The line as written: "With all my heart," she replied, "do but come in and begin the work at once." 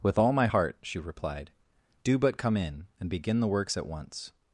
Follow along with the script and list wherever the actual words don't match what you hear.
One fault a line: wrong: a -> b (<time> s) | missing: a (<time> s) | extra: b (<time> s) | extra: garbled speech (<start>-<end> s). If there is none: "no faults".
wrong: work -> works (3.5 s)